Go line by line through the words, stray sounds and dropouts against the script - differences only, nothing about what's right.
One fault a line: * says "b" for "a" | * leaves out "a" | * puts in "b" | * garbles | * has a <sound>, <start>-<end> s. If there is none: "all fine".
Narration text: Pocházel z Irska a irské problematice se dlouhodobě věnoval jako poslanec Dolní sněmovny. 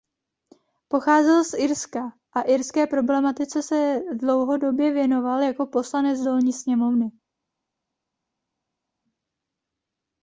all fine